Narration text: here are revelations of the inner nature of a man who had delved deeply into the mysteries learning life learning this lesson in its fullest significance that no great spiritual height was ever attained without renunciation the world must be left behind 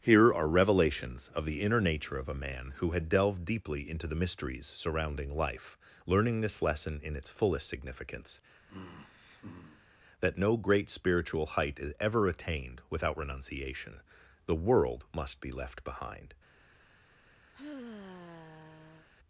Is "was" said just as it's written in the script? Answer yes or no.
no